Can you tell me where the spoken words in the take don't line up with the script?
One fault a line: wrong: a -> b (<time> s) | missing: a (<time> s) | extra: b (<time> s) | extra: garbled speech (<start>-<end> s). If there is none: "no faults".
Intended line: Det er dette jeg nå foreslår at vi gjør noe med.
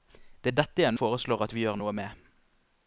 missing: nå (0.9 s)